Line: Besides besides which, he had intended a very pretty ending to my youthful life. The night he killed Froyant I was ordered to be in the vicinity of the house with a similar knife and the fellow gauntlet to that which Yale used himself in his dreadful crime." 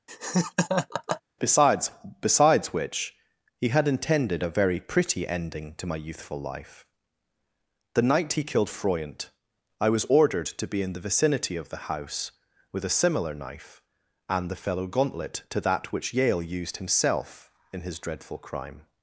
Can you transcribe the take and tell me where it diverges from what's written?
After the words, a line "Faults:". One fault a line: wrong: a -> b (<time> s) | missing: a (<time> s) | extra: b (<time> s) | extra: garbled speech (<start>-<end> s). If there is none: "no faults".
Besides besides which, he had intended a very pretty ending to my youthful life. The night he killed Froyant I was ordered to be in the vicinity of the house with a similar knife and the fellow gauntlet to that which Yale used himself in his dreadful crime."
Faults:
no faults